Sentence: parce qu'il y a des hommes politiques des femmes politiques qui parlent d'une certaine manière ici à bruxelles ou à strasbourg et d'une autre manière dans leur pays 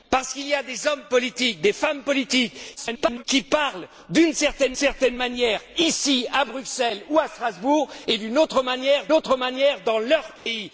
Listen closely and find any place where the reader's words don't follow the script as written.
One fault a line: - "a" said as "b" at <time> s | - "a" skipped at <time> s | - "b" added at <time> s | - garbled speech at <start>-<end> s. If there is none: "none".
- garbled speech at 2.8-3.2 s
- "certaine" added at 4.7 s
- "autre manière" added at 9.1 s